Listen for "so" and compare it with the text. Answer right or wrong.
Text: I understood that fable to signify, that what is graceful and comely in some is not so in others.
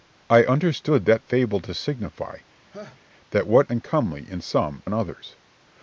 wrong